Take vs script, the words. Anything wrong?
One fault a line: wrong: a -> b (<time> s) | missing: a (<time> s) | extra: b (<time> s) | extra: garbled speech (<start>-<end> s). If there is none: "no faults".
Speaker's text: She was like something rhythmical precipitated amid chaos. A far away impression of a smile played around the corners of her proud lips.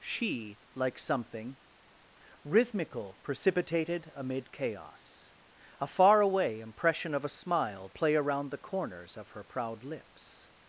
missing: was (0.6 s)
wrong: played -> play (7.9 s)